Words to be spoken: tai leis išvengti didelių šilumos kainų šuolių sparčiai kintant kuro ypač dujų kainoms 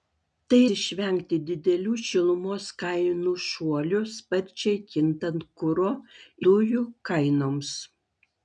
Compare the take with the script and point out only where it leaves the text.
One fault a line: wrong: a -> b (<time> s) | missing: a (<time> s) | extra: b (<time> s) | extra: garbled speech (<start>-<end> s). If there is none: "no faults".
missing: leis (0.6 s)
missing: ypač (5.9 s)